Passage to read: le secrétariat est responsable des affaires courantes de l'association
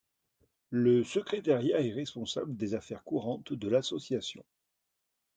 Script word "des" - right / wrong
right